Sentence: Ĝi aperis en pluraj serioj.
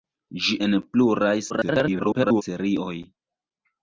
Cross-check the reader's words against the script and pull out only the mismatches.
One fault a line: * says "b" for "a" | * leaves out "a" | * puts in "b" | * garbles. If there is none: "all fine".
* leaves out "aperis"
* garbles